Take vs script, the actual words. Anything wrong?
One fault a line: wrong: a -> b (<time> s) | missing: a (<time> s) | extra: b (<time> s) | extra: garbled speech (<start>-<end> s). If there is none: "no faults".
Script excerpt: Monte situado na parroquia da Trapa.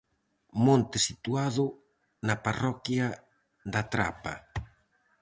no faults